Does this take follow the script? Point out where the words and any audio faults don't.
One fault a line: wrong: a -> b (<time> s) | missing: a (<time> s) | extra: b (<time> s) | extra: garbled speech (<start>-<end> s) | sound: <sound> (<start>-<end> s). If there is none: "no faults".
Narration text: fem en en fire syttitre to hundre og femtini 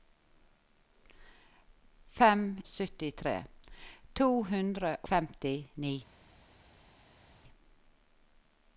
missing: en en fire (2.6 s)
missing: og (4.9 s)